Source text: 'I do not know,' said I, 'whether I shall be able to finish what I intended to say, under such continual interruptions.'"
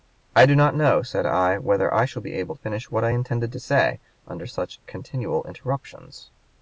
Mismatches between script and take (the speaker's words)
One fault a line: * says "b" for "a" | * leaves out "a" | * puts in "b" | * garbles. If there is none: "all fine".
* leaves out "to"